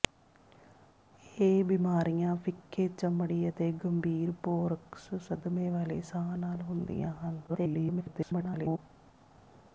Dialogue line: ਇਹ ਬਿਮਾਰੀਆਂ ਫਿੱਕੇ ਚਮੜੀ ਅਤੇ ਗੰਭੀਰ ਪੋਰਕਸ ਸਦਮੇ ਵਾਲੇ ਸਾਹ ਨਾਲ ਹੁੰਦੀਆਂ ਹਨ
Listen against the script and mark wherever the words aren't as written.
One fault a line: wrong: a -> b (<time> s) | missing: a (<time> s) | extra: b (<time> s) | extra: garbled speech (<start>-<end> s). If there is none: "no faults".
extra: garbled speech (7.5-8.8 s)